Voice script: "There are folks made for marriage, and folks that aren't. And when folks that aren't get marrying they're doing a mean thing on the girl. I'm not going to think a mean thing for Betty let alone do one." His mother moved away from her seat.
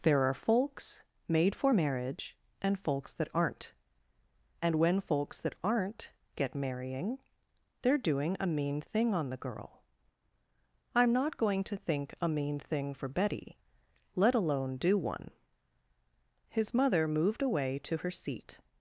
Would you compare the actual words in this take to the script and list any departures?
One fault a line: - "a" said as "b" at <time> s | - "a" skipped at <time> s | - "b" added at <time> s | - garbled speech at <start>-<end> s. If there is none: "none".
- "from" said as "to" at 17.8 s